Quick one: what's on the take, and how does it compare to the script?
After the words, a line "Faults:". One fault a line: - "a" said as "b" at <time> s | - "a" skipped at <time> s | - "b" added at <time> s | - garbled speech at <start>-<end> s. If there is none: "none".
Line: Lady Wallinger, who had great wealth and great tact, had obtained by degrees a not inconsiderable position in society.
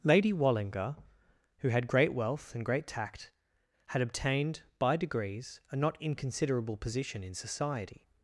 Lady Wallinger, who had great wealth and great tact, had obtained by degrees a not inconsiderable position in society.
Faults:
none